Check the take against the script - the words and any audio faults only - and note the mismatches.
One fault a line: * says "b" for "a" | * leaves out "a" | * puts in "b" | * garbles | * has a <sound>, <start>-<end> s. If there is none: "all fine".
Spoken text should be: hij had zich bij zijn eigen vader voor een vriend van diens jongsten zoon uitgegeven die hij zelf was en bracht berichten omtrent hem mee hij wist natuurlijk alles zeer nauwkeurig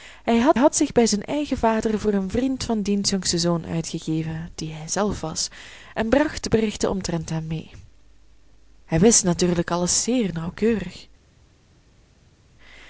* puts in "had"